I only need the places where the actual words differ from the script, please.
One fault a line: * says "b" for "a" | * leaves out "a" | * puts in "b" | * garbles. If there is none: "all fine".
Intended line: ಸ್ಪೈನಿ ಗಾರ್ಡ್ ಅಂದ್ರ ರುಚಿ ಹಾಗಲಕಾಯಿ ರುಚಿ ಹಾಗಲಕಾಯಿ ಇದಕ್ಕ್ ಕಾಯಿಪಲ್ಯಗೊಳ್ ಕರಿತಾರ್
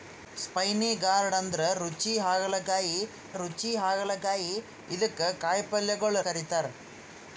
all fine